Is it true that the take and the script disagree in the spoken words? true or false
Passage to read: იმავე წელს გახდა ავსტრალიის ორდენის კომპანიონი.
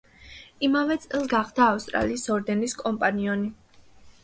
false